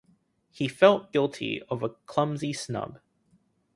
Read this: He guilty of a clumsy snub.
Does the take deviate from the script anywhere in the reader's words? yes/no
yes